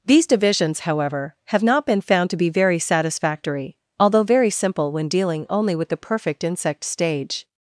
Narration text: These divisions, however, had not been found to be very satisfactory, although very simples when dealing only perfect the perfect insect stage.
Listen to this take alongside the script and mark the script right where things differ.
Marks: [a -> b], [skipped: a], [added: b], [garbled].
These divisions, however, [had -> have] not been found to be very satisfactory, although very [simples -> simple] when dealing only [perfect -> with] the perfect insect stage.